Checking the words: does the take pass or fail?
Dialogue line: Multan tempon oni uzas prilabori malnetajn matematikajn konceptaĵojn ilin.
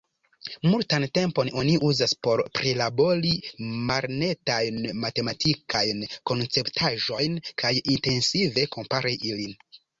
fail